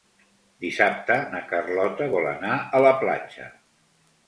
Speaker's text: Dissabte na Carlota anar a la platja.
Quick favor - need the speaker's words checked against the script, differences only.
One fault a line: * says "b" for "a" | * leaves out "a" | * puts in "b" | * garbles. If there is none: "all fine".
* puts in "vol"